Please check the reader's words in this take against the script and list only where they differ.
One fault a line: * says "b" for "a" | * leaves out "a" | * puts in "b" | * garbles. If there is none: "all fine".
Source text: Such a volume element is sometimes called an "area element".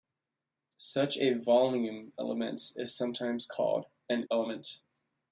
* leaves out "area"